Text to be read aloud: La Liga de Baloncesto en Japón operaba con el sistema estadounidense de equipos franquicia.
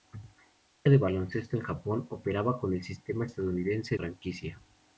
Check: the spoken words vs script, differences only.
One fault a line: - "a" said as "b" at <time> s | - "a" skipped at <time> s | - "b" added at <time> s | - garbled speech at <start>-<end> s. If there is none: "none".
- "Liga" skipped at 0.9 s
- "de equipos" skipped at 4.0 s